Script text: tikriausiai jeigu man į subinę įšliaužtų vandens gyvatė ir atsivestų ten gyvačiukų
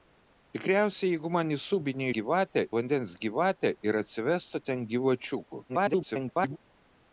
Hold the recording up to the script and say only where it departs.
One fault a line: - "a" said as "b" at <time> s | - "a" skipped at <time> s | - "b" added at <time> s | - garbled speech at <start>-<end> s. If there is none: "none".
- "įšliaužtų" said as "gyvatė" at 2.2 s
- garbled speech at 5.7-6.6 s